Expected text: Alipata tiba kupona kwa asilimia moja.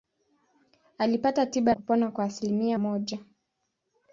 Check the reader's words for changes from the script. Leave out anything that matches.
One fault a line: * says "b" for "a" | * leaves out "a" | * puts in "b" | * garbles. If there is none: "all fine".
all fine